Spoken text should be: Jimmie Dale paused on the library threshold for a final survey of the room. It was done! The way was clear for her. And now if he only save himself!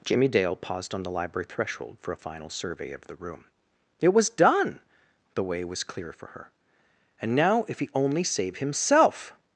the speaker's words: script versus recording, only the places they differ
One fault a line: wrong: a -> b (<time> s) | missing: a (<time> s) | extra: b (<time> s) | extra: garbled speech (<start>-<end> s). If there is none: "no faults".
no faults